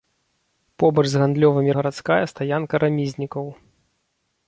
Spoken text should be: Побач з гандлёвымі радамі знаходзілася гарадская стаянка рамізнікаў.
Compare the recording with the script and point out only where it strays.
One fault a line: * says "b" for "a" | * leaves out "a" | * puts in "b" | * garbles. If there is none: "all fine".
* leaves out "радамі знаходзілася"